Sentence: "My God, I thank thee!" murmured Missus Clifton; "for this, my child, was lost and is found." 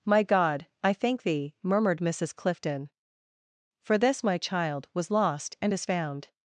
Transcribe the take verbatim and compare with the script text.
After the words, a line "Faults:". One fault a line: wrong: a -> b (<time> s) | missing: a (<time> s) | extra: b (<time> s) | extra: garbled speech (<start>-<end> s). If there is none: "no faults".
"My God, I thank thee!" murmured Missus Clifton; "for this, my child, was lost and is found."
Faults:
no faults